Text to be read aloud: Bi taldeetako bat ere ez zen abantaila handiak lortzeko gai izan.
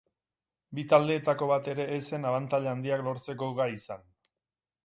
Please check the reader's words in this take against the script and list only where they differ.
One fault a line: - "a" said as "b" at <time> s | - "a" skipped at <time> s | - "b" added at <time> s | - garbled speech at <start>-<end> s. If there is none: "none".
none